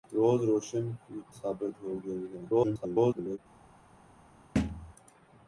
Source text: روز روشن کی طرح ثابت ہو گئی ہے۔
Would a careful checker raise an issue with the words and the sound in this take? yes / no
yes